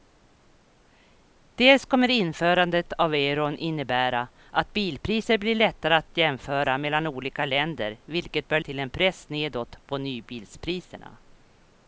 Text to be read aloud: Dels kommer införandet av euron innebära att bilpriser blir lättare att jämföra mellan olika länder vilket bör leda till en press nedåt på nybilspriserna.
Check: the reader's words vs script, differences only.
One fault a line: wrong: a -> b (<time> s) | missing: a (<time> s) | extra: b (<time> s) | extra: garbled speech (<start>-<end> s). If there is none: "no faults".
missing: leda (8.6 s)